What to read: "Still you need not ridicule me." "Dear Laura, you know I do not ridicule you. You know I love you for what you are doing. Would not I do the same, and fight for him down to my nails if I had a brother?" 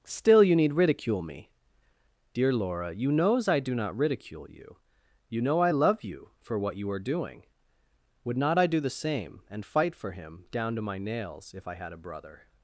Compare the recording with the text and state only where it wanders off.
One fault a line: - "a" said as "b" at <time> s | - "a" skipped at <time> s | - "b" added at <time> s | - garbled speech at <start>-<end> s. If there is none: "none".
- "not" skipped at 0.7 s
- "know" said as "knows" at 3.1 s